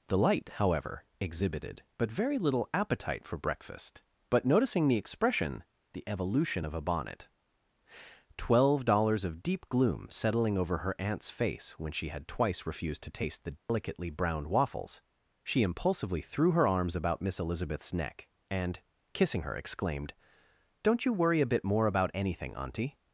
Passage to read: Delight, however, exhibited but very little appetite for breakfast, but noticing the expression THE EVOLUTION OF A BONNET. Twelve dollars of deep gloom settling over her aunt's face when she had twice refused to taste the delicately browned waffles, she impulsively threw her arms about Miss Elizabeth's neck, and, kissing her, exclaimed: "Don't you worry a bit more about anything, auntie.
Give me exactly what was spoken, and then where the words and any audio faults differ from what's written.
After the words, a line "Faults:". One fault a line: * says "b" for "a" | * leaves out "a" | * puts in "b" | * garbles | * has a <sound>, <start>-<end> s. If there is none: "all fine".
Delight, however, exhibited but very little appetite for breakfast, but noticing the expression THE EVOLUTION OF A BONNET. Twelve dollars of deep gloom settling over her aunt's face when she had twice refused to taste the delicately browned waffles, she impulsively threw her arms about Miss Elizabeth's neck, and, kissing her, exclaimed: "Don't you worry a bit more about anything, auntie.
Faults:
* has a dropout, 13.6-13.7 s